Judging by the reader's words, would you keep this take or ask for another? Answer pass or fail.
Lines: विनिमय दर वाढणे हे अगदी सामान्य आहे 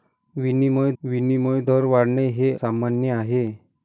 fail